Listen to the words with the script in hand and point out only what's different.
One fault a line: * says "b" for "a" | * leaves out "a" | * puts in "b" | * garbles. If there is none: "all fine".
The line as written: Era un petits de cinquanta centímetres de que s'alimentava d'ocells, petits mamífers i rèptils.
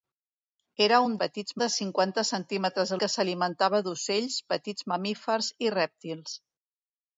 all fine